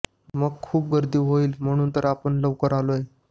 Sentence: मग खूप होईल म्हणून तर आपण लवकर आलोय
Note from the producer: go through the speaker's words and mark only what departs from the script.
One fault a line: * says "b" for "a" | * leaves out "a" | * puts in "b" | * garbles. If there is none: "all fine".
* puts in "गर्दी"